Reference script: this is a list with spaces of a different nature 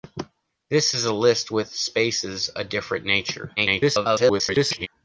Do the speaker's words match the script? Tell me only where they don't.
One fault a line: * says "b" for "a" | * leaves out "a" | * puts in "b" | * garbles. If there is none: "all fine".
* leaves out "of"
* garbles